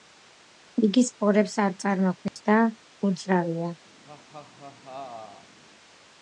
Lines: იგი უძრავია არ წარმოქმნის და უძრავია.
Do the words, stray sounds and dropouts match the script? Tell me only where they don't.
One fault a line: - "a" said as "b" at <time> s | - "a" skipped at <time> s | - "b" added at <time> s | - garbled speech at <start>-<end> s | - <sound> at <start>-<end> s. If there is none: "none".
- "უძრავია" said as "სპორებს" at 1.1 s
- dropout at 2.3-2.4 s
- laugh at 4.0-5.6 s